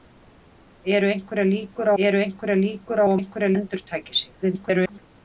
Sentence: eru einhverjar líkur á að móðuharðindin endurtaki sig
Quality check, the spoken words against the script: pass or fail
fail